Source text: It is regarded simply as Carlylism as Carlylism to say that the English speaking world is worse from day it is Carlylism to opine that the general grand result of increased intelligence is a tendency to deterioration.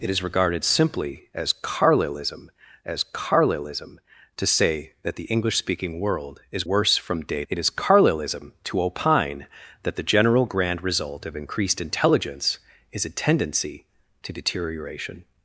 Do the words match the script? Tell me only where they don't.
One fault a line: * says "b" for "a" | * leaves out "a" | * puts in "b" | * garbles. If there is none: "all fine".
all fine